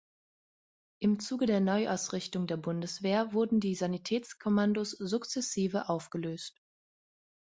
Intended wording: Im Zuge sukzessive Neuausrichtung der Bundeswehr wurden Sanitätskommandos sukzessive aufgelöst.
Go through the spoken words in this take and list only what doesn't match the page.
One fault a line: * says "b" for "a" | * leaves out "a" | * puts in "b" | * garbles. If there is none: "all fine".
* says "der" for "sukzessive"
* puts in "die"